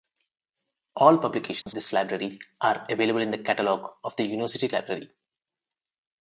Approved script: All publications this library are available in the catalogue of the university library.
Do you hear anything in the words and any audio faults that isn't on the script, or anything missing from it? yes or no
yes